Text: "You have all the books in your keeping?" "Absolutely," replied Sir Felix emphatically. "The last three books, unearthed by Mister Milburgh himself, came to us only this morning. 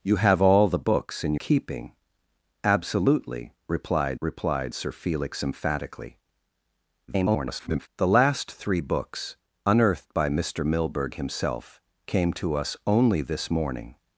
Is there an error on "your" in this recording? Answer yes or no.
yes